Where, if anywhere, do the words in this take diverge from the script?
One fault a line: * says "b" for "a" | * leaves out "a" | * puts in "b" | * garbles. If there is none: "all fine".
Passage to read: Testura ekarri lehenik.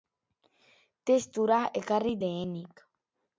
all fine